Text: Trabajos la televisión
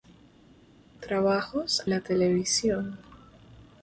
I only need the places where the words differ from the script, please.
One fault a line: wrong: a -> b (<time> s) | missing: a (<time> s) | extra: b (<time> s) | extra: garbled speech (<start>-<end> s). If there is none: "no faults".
no faults